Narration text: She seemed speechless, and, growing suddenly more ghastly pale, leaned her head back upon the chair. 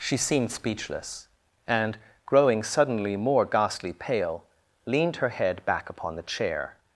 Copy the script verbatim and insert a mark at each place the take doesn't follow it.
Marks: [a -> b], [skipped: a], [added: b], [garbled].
She seemed speechless, and, growing suddenly more ghastly pale, leaned her head back upon the chair.